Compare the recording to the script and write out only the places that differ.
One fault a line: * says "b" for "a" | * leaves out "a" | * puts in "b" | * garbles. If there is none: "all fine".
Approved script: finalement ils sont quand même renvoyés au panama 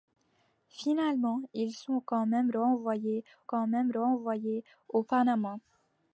* puts in "quand même renvoyés"